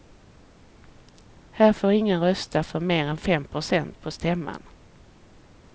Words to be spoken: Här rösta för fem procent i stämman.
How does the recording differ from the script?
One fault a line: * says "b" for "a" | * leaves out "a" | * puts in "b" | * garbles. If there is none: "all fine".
* puts in "får ingen"
* puts in "mer än"
* says "på" for "i"